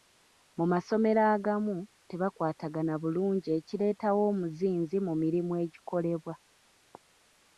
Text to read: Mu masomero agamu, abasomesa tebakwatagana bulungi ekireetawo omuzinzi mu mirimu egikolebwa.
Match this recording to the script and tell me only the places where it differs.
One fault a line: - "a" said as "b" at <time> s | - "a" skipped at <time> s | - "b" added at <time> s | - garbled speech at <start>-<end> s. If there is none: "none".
- "abasomesa" skipped at 1.8 s